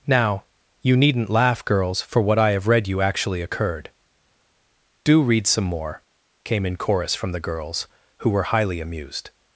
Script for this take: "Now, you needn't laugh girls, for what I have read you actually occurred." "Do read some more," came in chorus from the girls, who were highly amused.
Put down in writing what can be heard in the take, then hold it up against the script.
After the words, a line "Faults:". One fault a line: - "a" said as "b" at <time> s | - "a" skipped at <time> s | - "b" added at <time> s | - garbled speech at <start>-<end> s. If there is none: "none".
"Now, you needn't laugh girls, for what I have read you actually occurred." "Do read some more," came in chorus from the girls, who were highly amused.
Faults:
none